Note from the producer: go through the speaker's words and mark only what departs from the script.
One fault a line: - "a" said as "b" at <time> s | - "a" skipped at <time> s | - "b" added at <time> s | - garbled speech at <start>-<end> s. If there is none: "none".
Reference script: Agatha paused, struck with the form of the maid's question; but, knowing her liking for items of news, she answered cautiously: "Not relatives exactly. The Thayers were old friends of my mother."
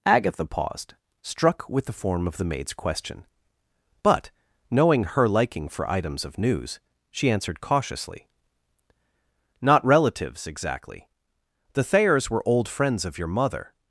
- "my" said as "your" at 13.2 s